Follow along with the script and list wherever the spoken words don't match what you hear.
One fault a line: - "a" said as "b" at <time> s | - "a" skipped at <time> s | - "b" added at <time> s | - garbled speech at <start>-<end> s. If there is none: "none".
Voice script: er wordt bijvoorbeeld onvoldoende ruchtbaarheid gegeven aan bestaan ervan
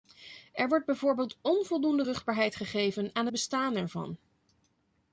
none